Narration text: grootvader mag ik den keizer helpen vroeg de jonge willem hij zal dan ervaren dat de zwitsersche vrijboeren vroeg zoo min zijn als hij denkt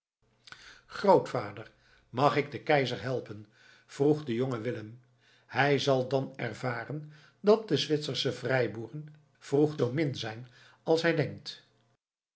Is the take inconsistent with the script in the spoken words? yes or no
no